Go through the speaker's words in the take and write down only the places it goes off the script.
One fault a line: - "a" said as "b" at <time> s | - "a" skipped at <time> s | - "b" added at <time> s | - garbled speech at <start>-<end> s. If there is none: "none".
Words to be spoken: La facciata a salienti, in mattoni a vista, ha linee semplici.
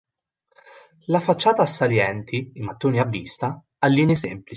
none